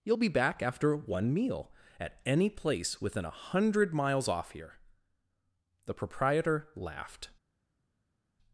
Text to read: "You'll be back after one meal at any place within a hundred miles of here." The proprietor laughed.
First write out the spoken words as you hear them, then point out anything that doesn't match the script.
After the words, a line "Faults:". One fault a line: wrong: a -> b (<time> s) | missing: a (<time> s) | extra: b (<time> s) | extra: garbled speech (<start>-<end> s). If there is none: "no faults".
"You'll be back after one meal at any place within a hundred miles off here." The proprietor laughed.
Faults:
wrong: of -> off (4.3 s)